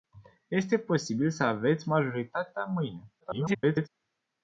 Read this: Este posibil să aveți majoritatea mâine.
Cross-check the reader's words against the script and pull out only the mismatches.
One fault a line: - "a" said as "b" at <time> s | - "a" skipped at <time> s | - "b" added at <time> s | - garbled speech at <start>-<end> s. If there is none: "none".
- garbled speech at 3.2-3.9 s